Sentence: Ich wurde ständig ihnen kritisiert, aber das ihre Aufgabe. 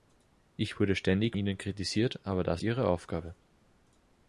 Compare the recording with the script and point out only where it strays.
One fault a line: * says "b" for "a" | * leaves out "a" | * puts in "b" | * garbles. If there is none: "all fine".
all fine